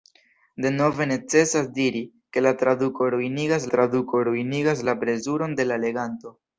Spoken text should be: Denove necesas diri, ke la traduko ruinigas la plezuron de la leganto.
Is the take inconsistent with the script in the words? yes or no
yes